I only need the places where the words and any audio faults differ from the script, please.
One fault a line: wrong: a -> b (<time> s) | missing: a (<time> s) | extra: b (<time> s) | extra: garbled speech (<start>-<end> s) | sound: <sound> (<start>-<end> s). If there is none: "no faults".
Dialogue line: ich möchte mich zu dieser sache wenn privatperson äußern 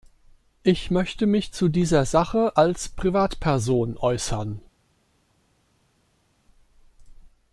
wrong: wenn -> als (2.5 s)